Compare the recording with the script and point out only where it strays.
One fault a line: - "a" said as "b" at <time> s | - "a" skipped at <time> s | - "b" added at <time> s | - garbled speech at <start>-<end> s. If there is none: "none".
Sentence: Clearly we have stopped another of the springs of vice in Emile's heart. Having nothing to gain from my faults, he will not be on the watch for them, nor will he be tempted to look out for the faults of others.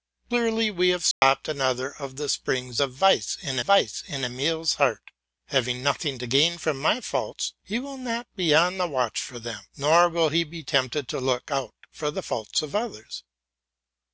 - "vice in" added at 3.6 s